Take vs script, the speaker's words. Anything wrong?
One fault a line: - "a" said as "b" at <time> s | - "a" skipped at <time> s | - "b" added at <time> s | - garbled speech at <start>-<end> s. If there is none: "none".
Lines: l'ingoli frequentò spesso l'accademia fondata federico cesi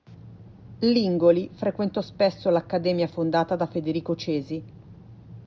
- "da" added at 3.5 s